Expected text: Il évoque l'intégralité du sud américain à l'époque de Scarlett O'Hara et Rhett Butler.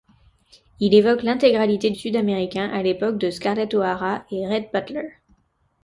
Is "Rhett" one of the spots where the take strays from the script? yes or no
no